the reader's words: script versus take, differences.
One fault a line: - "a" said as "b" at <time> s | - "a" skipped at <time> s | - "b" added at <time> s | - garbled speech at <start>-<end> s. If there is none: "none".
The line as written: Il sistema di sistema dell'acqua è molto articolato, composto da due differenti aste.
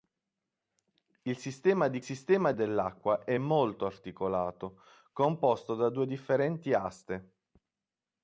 none